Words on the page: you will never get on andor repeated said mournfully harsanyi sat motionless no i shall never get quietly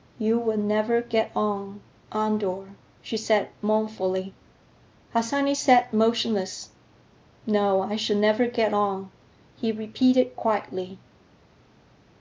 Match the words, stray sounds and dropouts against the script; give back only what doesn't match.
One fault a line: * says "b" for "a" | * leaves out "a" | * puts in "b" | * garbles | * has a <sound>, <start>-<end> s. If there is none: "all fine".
* says "she" for "repeated"
* puts in "on he repeated"